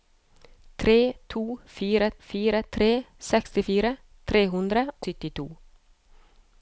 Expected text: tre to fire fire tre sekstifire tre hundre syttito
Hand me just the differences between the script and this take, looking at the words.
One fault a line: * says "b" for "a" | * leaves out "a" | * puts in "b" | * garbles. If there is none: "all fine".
all fine